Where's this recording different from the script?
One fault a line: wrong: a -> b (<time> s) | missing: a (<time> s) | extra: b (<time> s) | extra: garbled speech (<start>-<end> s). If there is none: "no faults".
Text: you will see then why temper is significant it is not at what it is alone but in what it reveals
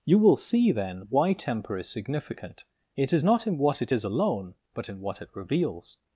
wrong: at -> in (3.5 s)